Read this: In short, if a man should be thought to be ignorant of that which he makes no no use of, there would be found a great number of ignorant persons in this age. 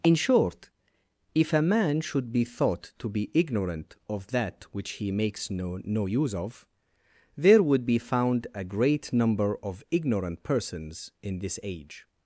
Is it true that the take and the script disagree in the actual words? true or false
false